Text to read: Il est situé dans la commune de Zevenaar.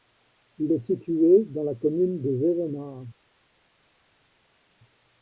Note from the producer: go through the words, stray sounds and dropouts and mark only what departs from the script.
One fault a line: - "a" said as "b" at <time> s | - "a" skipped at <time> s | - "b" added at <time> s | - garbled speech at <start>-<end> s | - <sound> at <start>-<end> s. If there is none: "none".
none